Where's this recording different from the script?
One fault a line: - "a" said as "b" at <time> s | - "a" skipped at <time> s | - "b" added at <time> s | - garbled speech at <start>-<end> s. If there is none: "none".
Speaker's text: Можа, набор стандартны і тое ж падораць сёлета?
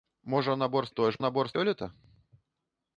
- "стандартны" skipped at 0.9 s
- "падораць" said as "набор" at 1.2 s